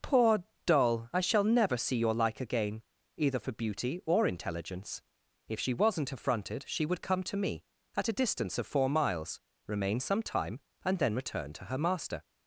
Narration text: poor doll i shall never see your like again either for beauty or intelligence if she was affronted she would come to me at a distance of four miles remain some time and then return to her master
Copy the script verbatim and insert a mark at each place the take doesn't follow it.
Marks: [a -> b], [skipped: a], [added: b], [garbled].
poor doll i shall never see your like again either for beauty or intelligence if she [was -> wasn't] affronted she would come to me at a distance of four miles remain some time and then return to her master